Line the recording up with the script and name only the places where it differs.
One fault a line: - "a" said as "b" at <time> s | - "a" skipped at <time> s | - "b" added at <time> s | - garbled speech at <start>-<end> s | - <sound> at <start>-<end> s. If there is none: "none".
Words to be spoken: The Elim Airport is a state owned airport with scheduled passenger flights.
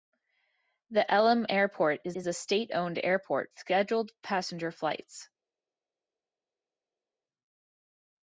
- "is" added at 2.1 s
- "with" skipped at 3.5 s